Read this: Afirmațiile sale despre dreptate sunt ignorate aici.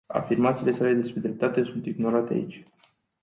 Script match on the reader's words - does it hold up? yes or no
yes